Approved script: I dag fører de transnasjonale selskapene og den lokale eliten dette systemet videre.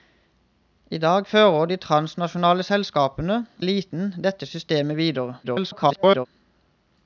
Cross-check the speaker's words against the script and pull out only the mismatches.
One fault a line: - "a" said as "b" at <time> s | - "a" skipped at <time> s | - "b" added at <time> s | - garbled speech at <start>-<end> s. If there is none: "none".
- "og den lokale" skipped at 3.4 s
- garbled speech at 5.4-6.3 s